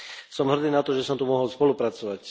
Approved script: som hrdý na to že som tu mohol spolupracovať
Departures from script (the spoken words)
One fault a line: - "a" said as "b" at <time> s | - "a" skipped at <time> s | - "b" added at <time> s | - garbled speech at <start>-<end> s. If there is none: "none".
none